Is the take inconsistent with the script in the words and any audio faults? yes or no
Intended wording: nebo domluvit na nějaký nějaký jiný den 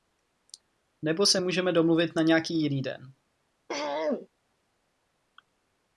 yes